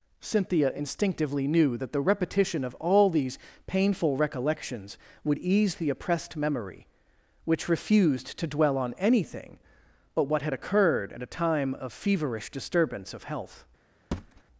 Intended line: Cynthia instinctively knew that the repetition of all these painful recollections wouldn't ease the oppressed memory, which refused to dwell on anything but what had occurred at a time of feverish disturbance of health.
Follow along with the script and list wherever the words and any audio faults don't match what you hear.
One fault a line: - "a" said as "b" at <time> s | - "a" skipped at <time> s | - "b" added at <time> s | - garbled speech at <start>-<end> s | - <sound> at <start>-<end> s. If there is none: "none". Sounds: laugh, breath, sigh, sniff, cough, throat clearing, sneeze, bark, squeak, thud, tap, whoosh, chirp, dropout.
- "wouldn't" said as "would" at 5.2 s
- thud at 14.1-14.4 s